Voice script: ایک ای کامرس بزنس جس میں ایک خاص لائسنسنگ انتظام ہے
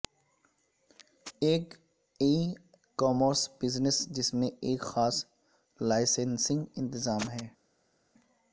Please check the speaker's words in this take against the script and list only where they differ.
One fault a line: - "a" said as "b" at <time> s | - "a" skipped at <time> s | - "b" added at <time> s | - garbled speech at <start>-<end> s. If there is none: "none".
none